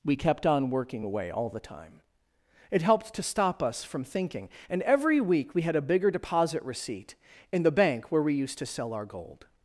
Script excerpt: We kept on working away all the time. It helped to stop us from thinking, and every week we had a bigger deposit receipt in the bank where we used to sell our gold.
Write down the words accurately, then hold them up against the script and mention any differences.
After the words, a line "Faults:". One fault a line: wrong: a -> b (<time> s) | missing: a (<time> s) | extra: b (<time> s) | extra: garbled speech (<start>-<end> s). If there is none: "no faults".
We kept on working away all the time. It helped to stop us from thinking, and every week we had a bigger deposit receipt in the bank where we used to sell our gold.
Faults:
no faults